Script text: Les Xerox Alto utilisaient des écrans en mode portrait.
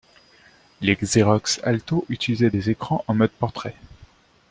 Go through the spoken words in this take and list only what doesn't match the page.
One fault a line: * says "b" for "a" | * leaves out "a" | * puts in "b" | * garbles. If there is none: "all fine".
all fine